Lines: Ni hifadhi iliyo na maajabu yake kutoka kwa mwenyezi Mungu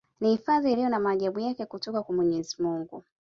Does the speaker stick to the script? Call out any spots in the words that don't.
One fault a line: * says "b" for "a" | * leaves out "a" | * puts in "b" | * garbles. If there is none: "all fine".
all fine